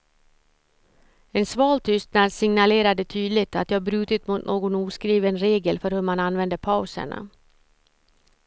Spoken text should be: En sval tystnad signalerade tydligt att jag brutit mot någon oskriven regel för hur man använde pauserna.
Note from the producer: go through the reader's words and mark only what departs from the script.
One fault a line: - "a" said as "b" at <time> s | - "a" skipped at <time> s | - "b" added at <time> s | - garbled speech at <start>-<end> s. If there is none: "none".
none